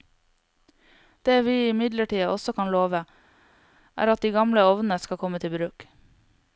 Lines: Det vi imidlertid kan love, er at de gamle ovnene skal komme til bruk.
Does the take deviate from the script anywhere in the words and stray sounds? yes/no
yes